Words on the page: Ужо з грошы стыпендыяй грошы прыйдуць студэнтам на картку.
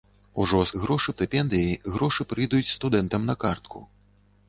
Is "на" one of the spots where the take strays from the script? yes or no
no